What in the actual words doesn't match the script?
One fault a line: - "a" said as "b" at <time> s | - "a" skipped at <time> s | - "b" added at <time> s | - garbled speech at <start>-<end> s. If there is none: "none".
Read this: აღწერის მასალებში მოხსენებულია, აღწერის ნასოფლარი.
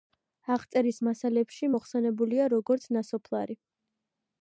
- "აღწერის" said as "როგორც" at 2.6 s